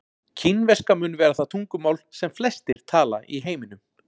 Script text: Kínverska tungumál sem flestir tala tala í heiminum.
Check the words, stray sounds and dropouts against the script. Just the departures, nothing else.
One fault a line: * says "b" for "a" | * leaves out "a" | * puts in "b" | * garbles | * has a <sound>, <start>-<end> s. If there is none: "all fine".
* puts in "mun vera það"
* has a dropout, 2.7-2.8 s
* leaves out "tala"